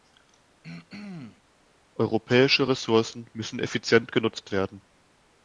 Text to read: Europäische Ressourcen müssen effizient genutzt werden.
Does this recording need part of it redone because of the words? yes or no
no